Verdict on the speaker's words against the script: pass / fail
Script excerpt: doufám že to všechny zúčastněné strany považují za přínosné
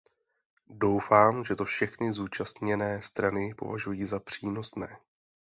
pass